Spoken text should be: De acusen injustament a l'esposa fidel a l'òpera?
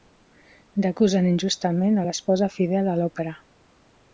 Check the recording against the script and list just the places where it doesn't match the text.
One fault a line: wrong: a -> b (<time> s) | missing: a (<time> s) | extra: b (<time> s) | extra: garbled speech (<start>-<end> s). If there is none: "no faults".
no faults